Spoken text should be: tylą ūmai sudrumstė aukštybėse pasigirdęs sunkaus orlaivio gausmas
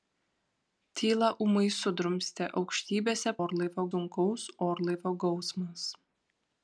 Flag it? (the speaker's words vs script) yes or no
yes